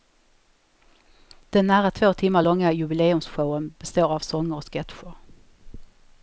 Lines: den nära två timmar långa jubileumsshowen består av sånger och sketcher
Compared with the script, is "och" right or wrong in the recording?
right